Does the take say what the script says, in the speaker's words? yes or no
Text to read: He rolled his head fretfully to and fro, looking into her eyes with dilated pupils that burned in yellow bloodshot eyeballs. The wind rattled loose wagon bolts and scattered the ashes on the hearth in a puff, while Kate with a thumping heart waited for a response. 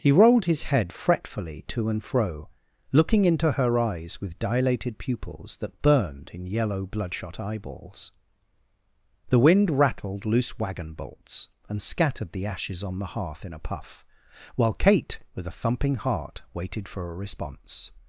yes